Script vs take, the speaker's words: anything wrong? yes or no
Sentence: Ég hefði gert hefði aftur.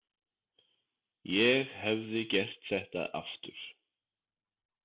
yes